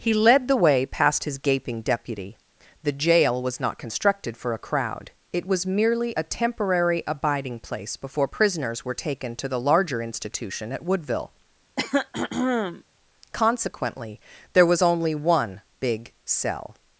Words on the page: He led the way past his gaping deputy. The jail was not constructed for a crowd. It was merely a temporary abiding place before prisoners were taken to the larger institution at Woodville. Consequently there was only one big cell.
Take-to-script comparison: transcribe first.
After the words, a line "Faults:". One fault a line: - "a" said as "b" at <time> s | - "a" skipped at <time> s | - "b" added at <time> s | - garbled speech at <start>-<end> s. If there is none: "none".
He led the way past his gaping deputy. The jail was not constructed for a crowd. It was merely a temporary abiding place before prisoners were taken to the larger institution at Woodville. Consequently there was only one big cell.
Faults:
none